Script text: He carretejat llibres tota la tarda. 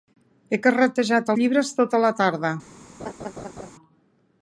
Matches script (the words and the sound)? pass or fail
fail